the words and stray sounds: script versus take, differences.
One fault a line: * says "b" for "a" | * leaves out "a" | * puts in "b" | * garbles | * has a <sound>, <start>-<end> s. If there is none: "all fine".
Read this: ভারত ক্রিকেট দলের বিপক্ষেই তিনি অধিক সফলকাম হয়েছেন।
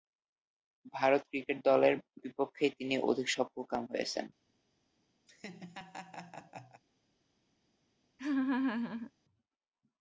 * has a laugh, 5.3-6.8 s
* has a laugh, 8.2-9.1 s